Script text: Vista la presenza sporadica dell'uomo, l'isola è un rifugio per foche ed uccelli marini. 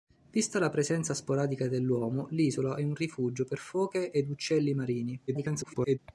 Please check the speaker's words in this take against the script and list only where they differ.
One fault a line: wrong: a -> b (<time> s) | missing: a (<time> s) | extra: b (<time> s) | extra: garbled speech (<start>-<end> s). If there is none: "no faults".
extra: garbled speech (5.3-6.0 s)